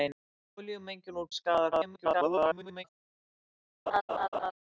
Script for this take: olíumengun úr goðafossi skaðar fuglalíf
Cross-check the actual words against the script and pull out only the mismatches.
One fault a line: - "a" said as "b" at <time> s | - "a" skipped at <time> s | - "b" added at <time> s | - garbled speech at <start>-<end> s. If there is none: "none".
- "goðafossi" skipped at 1.3 s
- garbled speech at 1.7-2.8 s